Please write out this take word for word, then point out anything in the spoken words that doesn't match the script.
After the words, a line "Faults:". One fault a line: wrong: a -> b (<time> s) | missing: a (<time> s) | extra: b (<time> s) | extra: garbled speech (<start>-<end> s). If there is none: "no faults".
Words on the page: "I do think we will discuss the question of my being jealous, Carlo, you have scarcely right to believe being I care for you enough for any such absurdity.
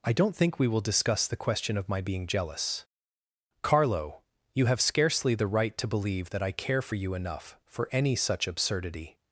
"I don't think we will discuss the question of my being jealous, Carlo, you have scarcely the right to believe that I care for you enough for any such absurdity.
Faults:
wrong: do -> don't (0.1 s)
extra: the (5.3 s)
wrong: being -> that (6.3 s)